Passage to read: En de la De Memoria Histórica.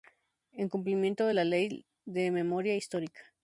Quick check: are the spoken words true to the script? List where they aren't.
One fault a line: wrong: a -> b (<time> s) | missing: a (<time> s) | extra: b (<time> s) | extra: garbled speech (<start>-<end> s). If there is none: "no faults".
extra: cumplimiento (0.7 s)
extra: Ley (1.4 s)